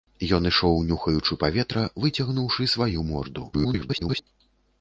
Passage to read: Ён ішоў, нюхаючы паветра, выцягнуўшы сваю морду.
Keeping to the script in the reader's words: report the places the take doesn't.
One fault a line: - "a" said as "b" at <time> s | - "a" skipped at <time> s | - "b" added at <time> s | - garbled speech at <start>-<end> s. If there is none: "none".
- garbled speech at 3.5-4.2 s